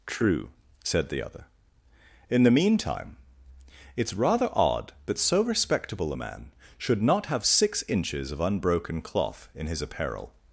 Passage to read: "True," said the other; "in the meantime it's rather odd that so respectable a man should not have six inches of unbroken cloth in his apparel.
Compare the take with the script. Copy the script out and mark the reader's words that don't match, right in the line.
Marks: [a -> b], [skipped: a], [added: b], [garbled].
"True," said the other; "in the meantime it's rather odd that so respectable a man should not have six inches of unbroken cloth in his apparel.